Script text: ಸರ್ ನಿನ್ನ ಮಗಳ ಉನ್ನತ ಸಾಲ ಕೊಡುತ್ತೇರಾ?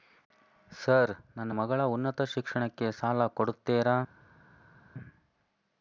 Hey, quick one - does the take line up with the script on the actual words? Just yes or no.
no